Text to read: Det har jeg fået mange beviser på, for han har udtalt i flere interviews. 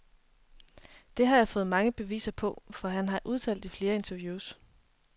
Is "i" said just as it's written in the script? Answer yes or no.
yes